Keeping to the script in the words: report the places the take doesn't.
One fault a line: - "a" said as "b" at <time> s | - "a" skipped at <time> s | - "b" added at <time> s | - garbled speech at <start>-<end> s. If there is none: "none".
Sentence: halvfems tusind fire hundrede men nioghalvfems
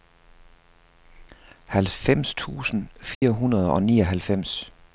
- "men" said as "og" at 3.7 s